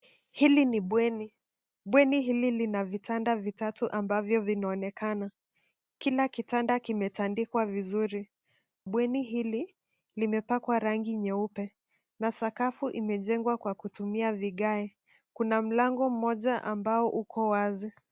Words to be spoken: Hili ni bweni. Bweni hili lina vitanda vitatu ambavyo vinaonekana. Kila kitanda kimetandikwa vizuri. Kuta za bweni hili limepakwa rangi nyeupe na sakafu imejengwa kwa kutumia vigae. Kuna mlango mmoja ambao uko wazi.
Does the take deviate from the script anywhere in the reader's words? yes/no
yes